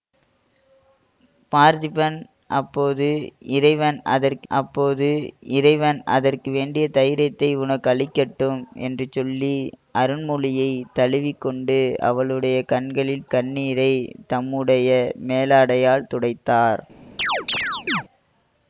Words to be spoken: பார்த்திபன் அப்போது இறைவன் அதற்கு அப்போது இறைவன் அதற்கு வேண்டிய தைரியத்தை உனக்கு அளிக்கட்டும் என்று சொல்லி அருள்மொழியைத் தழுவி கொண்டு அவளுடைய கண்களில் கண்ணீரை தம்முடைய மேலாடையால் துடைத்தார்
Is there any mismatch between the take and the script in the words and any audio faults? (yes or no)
yes